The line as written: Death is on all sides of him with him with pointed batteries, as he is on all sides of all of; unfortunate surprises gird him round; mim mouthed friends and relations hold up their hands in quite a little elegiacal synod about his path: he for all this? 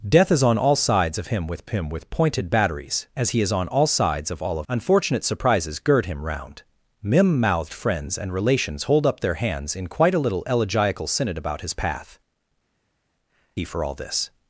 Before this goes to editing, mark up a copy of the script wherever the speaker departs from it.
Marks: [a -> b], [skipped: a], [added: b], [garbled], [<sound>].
Death is on all sides of him with him with pointed batteries, as he is on all sides of all of; unfortunate surprises gird him round; mim mouthed friends and relations hold up their hands in quite a little elegiacal synod about his path: he for all this?